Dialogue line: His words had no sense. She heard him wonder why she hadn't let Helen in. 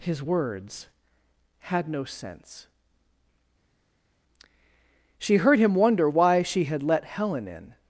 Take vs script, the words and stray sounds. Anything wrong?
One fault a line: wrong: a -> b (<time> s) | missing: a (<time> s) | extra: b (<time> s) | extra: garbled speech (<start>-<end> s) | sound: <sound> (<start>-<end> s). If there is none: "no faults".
wrong: hadn't -> had (6.6 s)